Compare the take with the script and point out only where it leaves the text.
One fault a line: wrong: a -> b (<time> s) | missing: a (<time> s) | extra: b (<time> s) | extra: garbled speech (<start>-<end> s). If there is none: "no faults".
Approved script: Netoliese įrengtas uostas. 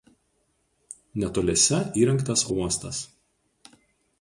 no faults